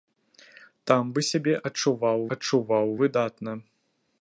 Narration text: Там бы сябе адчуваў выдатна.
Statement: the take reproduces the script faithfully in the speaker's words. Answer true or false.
false